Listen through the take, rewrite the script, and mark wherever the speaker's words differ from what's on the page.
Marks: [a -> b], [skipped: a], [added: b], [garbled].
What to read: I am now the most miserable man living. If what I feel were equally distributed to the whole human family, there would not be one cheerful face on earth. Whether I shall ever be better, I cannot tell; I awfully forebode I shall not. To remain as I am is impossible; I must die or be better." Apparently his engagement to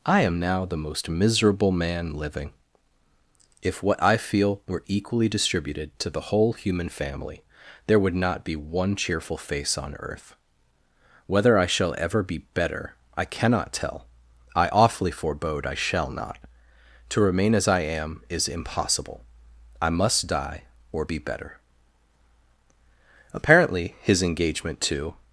I am now the most miserable man living. If what I feel were equally distributed to the whole human family, there would not be one cheerful face on earth. Whether I shall ever be better, I cannot tell; I awfully forebode I shall not. To remain as I am is impossible; I must die or be better." Apparently his engagement to